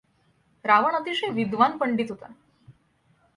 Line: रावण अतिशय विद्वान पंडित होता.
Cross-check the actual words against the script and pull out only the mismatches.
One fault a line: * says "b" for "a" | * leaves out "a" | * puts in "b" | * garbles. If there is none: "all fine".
all fine